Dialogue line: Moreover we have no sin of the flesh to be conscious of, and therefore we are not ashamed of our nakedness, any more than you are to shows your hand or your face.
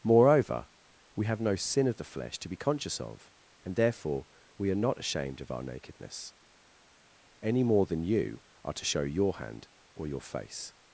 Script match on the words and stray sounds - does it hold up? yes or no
no